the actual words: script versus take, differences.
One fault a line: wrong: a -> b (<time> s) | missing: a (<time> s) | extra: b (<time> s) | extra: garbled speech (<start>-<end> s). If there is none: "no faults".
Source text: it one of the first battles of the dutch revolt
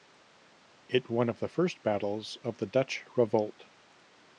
no faults